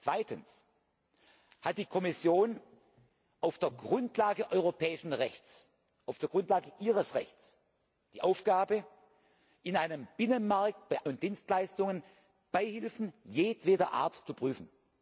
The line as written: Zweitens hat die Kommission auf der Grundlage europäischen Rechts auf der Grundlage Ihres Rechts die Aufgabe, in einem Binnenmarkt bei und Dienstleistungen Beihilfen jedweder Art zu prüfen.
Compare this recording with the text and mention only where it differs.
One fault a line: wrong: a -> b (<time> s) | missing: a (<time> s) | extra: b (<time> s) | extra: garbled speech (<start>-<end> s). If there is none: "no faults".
no faults